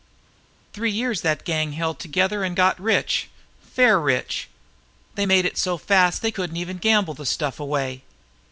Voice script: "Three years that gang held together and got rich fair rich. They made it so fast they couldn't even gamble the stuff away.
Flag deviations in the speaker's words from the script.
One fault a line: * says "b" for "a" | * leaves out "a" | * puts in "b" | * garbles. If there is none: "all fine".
all fine